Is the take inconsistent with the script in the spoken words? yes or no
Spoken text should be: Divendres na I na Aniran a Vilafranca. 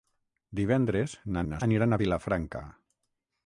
no